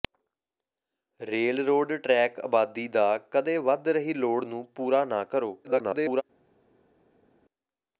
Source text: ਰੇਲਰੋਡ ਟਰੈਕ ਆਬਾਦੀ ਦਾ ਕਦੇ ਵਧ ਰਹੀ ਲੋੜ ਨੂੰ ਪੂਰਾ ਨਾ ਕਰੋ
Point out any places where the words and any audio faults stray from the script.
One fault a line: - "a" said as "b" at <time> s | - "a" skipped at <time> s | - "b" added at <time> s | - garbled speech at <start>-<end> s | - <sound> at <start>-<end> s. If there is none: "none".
- garbled speech at 5.6-6.2 s